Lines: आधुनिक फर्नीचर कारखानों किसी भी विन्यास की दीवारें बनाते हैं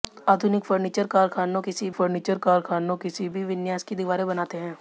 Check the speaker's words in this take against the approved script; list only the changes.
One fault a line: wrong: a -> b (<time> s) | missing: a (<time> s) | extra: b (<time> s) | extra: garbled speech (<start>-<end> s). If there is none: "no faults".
extra: फर्नीचर कारखानों किसी (1.9 s)